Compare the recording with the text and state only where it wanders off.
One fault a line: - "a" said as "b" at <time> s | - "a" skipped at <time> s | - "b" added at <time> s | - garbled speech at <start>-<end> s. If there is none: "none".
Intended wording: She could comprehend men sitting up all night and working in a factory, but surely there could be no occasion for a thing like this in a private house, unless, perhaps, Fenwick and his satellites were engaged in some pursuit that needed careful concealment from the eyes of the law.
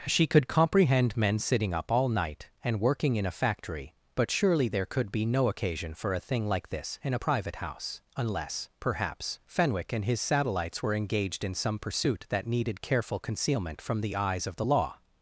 none